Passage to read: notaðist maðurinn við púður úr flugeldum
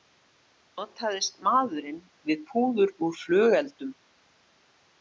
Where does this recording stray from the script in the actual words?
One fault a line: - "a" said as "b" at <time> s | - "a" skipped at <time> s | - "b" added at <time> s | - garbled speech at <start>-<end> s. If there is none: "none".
none